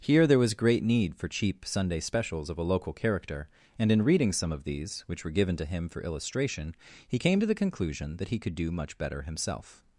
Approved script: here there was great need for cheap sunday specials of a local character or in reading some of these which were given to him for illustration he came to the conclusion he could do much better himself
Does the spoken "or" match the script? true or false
false